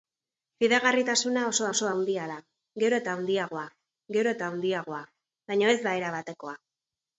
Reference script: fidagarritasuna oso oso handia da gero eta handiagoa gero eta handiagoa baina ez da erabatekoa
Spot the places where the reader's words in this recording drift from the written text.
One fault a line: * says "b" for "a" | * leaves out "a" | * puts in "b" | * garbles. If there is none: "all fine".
all fine